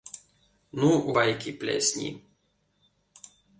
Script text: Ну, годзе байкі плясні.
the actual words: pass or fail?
fail